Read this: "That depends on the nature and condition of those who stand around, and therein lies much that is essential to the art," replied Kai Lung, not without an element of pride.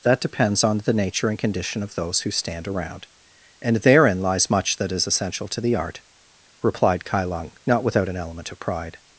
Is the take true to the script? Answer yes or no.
yes